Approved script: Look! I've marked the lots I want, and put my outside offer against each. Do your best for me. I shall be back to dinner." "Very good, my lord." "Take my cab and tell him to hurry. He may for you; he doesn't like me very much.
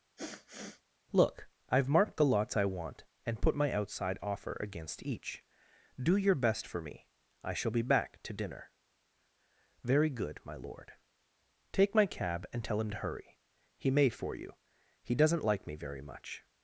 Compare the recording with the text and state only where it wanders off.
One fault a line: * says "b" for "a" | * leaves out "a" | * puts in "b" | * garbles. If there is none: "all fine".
all fine